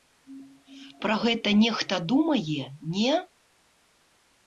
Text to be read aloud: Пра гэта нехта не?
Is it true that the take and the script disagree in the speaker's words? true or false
true